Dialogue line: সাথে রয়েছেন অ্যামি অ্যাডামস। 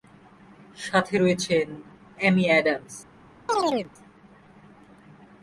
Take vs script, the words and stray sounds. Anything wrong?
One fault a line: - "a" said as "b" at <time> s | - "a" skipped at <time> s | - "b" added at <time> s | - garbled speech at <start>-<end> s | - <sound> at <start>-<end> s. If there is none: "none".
- chirp at 3.5-3.9 s